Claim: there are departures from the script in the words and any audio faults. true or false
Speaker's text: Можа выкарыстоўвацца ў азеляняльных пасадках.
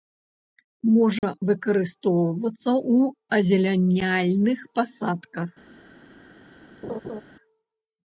true